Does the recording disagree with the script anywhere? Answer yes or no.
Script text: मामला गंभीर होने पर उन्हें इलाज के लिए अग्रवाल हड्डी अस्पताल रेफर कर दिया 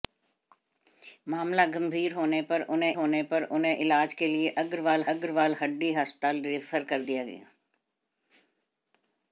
yes